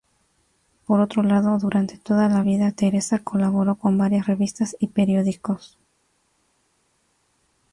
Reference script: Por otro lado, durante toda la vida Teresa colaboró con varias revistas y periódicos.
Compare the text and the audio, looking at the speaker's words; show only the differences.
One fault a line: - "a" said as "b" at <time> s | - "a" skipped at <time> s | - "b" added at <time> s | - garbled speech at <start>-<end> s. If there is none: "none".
none